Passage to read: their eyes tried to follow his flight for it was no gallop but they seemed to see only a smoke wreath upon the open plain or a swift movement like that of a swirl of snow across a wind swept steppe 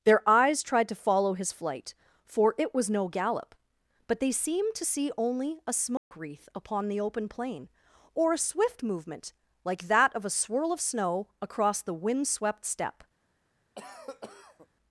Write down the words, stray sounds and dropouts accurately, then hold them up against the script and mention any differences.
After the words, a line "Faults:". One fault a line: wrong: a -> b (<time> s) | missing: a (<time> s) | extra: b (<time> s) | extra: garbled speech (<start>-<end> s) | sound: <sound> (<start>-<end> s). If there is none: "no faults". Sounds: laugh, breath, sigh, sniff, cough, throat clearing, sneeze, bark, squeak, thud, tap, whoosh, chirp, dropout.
their eyes tried to follow his flight for it was no gallop but they seemed to see only a smoke wreath upon the open plain or a swift movement like that of a swirl of snow across the wind swept steppe
Faults:
sound: dropout (6.0-6.1 s)
wrong: a -> the (11.8 s)
sound: cough (13.7-14.7 s)